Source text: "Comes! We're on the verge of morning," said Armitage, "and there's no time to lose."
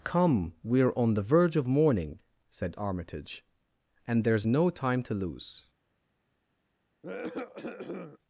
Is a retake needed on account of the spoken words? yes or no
yes